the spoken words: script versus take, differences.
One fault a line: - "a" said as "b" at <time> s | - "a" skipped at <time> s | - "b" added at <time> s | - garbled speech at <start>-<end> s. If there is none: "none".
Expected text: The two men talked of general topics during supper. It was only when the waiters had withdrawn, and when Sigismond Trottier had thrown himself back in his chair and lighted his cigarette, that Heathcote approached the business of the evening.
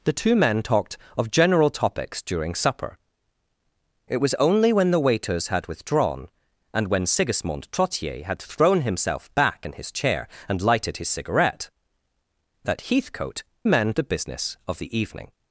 - "approached" said as "men" at 13.7 s